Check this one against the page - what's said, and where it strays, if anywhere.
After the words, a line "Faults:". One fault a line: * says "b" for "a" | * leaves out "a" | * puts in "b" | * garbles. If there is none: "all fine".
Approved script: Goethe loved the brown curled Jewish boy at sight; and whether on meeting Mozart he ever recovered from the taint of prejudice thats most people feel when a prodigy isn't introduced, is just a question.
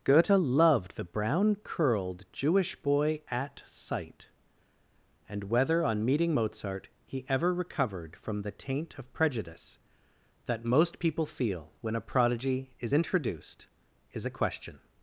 Goethe loved the brown curled Jewish boy at sight; and whether on meeting Mozart he ever recovered from the taint of prejudice that most people feel when a prodigy is introduced, is a question.
Faults:
* says "that" for "thats"
* says "is" for "isn't"
* leaves out "just"